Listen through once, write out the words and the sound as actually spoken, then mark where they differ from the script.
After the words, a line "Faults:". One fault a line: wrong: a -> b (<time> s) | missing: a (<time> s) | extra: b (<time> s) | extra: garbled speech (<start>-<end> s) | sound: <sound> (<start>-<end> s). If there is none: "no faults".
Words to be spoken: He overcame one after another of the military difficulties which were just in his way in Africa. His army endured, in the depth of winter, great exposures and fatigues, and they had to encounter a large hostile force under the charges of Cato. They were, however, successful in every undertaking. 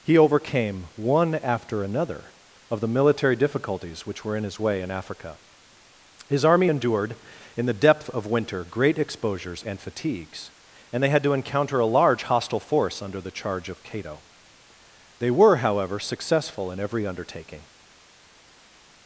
He overcame one after another of the military difficulties which were in his way in Africa. His army endured, in the depth of winter, great exposures and fatigues, and they had to encounter a large hostile force under the charge of Cato. They were, however, successful in every undertaking.
Faults:
missing: just (4.3 s)
wrong: charges -> charge (13.3 s)